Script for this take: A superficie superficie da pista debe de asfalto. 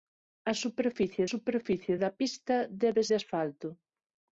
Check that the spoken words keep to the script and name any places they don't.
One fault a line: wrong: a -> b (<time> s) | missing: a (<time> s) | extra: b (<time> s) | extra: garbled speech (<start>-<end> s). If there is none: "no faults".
no faults